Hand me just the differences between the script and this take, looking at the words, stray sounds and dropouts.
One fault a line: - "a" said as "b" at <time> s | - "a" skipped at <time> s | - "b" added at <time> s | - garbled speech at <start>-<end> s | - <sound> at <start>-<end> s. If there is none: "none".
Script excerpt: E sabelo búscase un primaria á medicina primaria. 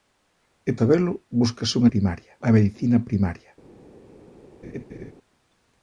- laugh at 4.6-5.1 s